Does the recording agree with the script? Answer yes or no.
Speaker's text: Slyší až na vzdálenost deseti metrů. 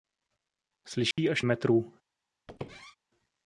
no